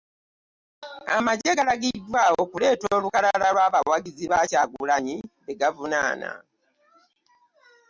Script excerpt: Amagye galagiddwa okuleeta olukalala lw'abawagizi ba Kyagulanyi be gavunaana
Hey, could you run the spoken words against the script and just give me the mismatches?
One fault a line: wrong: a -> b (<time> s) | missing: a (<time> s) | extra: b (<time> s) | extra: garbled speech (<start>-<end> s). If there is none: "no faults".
no faults